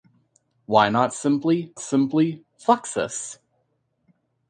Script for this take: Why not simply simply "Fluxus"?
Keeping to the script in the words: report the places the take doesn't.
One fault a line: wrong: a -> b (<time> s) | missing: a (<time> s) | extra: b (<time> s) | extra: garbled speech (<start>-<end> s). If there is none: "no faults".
no faults